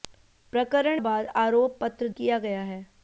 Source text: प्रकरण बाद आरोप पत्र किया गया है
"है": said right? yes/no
yes